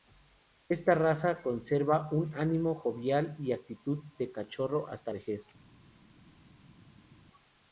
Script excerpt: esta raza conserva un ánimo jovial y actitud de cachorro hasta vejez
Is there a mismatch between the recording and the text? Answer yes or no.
no